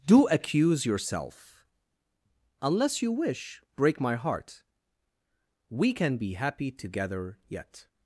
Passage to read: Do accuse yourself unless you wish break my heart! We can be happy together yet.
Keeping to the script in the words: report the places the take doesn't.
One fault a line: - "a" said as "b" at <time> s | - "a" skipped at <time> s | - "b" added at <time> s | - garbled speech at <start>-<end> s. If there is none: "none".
none